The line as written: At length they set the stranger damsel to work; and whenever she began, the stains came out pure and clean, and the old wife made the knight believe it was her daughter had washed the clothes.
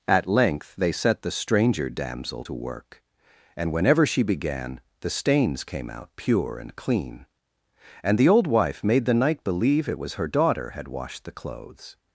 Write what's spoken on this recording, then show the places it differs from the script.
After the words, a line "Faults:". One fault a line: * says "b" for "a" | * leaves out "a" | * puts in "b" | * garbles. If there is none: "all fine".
At length they set the stranger damsel to work; and whenever she began, the stains came out pure and clean, and the old wife made the knight believe it was her daughter had washed the clothes.
Faults:
all fine